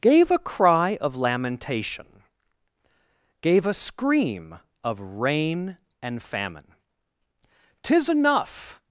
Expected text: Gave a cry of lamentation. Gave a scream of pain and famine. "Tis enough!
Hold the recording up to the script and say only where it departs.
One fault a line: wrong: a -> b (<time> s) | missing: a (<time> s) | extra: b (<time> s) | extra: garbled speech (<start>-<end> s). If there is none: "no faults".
wrong: pain -> rain (5.0 s)